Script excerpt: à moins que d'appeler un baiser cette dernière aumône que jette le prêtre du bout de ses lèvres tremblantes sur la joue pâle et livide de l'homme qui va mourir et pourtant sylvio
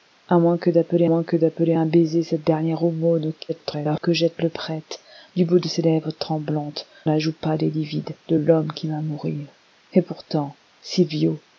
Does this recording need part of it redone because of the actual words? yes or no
yes